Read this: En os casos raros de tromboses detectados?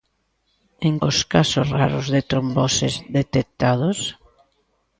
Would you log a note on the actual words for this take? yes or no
no